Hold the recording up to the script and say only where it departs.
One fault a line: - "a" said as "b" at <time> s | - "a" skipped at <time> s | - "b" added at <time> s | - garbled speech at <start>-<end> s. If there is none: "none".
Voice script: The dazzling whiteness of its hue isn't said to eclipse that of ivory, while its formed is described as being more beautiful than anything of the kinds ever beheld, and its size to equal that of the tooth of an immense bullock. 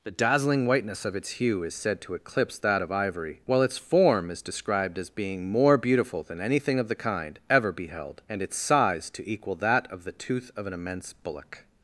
- "isn't" said as "is" at 1.6 s
- "formed" said as "form" at 3.8 s
- "kinds" said as "kind" at 7.0 s